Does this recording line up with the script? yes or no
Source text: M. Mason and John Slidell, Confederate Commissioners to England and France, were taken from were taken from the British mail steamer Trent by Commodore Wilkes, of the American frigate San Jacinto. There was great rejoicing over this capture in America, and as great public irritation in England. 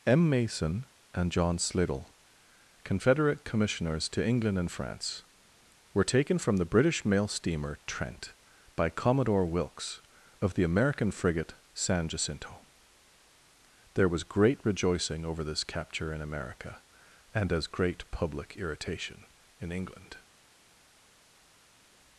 no